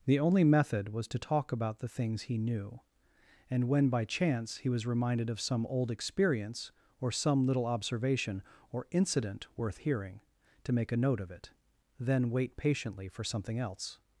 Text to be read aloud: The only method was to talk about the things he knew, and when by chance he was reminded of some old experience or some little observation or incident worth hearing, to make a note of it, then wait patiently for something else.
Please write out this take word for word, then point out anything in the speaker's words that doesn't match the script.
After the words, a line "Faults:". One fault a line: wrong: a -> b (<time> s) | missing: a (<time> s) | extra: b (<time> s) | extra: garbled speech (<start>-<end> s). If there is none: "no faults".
The only method was to talk about the things he knew, and when by chance he was reminded of some old experience or some little observation or incident worth hearing, to make a note of it, then wait patiently for something else.
Faults:
no faults